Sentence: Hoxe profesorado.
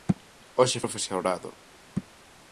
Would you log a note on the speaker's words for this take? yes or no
no